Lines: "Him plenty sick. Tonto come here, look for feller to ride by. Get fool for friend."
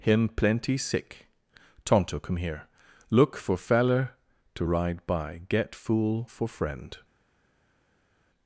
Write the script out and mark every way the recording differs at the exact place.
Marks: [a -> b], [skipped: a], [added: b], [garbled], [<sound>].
"Him plenty sick. Tonto come here, look for feller to ride by. Get fool for friend."